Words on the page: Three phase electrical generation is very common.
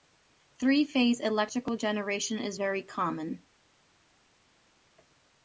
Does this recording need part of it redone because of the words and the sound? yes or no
no